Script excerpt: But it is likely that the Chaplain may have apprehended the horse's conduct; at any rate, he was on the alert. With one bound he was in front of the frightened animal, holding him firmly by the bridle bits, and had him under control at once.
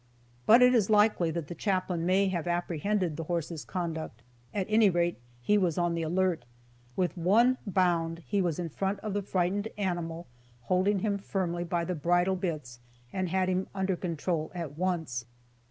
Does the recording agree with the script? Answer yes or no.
yes